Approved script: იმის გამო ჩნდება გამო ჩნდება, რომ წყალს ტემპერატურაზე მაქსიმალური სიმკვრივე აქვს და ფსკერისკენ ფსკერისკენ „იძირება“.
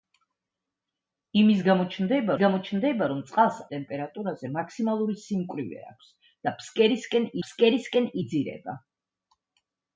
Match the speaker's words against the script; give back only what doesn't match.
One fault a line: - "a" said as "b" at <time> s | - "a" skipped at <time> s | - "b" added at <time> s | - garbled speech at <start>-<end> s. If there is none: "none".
none